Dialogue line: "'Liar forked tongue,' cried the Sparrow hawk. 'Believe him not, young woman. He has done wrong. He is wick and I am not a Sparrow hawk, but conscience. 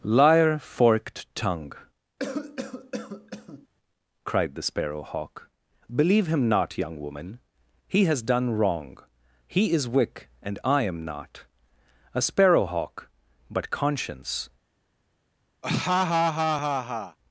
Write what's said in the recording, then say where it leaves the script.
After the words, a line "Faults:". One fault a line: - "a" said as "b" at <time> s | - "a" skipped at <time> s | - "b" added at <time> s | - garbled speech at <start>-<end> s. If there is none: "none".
"'Liar forked tongue,' cried the Sparrow hawk. 'Believe him not, young woman. He has done wrong. He is wick and I am not a Sparrow hawk, but conscience.
Faults:
none